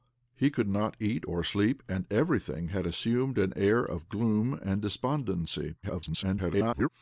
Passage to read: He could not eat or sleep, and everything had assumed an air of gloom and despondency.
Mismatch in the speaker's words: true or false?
true